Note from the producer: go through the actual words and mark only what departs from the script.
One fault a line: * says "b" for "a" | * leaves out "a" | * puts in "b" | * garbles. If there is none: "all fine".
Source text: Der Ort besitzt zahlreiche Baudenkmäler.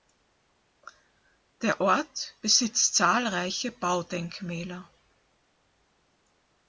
all fine